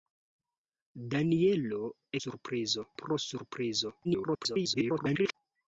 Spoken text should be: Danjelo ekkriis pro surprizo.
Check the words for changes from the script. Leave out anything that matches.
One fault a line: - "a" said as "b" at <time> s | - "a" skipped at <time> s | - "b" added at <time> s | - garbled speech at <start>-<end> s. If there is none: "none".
- "ekkriis" said as "surprizo" at 2.2 s
- garbled speech at 4.0-5.4 s